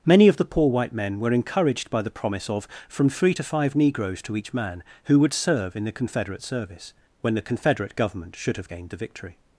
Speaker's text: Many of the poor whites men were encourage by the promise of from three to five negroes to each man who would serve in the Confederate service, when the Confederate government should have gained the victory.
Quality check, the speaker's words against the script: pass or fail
fail